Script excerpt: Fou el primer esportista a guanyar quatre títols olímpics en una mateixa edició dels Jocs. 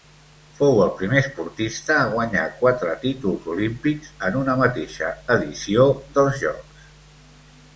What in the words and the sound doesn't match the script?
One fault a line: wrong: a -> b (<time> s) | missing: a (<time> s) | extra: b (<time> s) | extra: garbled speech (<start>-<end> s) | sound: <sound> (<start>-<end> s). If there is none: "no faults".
no faults